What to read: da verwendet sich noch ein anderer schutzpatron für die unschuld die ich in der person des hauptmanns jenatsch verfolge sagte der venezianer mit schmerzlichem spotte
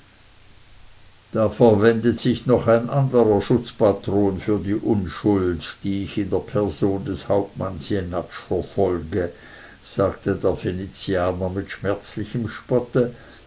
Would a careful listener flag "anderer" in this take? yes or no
no